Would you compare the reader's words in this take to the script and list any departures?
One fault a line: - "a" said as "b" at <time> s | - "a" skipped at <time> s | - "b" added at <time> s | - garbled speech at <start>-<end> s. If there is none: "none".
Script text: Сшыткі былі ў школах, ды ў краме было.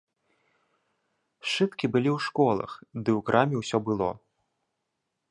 - "ўсё" added at 3.6 s